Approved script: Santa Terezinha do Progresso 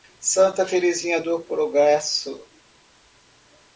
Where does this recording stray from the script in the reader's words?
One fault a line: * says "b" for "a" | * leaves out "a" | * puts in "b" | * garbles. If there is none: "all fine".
all fine